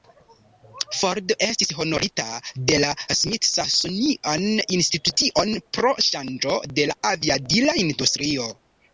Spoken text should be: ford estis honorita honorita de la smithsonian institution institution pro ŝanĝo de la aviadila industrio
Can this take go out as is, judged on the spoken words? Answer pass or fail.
fail